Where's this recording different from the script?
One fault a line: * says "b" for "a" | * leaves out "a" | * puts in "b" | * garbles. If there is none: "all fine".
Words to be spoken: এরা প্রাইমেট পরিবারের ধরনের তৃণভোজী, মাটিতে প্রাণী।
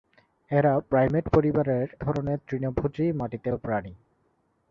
all fine